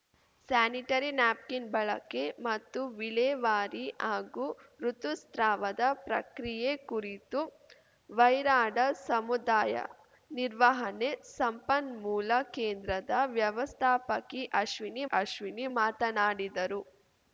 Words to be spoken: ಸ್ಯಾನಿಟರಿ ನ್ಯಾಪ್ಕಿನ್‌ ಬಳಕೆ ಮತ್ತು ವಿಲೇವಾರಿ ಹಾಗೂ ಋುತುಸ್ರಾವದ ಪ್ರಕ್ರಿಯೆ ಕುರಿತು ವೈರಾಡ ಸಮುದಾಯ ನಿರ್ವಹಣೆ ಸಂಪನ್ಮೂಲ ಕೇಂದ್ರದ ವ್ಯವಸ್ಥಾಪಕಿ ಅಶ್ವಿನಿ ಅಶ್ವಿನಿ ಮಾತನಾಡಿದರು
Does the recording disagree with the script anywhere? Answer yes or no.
no